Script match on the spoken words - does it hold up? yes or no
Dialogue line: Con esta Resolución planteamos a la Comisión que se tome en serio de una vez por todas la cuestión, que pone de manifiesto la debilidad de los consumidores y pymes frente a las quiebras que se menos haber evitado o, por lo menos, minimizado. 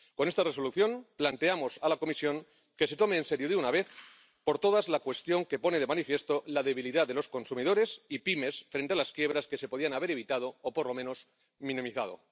no